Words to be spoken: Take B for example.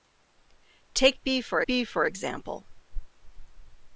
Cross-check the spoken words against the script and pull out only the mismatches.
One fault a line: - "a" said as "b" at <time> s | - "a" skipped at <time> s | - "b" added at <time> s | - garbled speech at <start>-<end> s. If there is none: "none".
- "B for" added at 1.7 s